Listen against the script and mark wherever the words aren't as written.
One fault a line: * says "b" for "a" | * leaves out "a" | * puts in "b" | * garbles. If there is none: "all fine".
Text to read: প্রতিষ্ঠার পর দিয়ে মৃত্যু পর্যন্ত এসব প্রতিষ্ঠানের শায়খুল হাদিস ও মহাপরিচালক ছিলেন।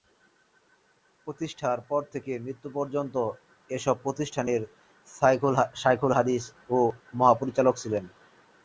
* says "থেকে" for "দিয়ে"